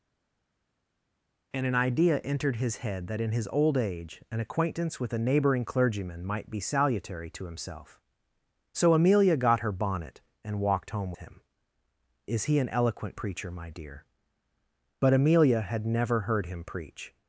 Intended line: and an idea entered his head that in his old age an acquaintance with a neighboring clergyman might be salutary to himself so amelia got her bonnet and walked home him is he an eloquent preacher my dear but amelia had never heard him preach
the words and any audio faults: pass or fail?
pass